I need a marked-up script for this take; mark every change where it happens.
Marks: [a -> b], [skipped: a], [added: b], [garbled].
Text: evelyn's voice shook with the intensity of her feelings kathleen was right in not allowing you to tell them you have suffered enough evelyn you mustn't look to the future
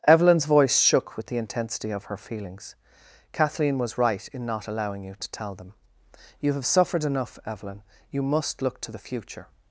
evelyn's voice shook with the intensity of her feelings kathleen was right in not allowing you to tell them you have suffered enough evelyn you [mustn't -> must] look to the future